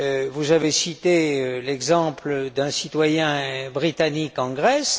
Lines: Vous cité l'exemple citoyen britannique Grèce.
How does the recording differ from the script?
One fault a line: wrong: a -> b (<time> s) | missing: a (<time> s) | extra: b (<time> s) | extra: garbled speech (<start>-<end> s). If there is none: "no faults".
extra: avez (0.5 s)
extra: d'un (2.5 s)
extra: en (4.4 s)